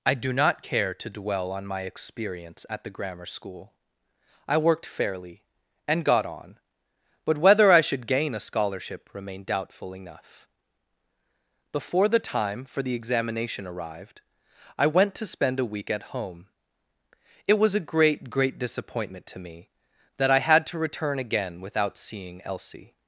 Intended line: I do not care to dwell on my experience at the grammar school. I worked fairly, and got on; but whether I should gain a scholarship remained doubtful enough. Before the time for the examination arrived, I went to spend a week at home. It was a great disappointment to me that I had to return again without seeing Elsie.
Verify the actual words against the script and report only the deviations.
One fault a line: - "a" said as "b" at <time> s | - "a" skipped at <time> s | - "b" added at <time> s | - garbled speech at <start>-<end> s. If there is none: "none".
- "great" added at 18.3 s